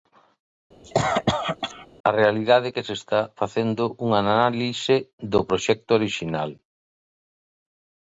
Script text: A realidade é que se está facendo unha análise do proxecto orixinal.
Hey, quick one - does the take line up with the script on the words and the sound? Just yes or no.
no